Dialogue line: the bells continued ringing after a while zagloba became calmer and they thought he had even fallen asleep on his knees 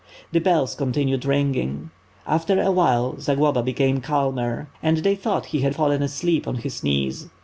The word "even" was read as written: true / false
false